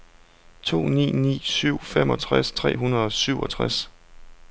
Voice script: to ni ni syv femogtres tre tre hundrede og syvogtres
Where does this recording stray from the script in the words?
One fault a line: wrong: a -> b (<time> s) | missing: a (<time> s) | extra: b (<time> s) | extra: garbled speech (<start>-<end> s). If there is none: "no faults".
missing: tre (2.8 s)